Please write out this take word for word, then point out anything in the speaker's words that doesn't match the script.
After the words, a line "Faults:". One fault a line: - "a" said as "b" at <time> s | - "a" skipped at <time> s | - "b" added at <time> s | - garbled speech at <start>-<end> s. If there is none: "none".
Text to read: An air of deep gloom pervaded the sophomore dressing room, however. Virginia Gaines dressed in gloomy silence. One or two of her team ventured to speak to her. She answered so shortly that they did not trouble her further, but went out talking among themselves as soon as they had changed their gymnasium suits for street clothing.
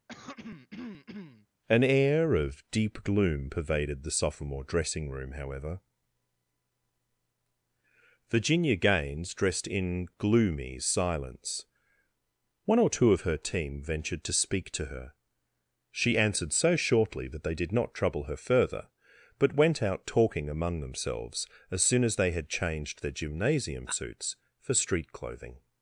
An air of deep gloom pervaded the sophomore dressing room, however. Virginia Gaines dressed in gloomy silence. One or two of her team ventured to speak to her. She answered so shortly that they did not trouble her further, but went out talking among themselves as soon as they had changed their gymnasium suits for street clothing.
Faults:
none